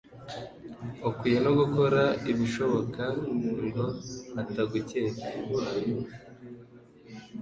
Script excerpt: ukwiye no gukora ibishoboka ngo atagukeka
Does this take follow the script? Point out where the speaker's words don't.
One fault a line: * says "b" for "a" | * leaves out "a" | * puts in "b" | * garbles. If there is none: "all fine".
all fine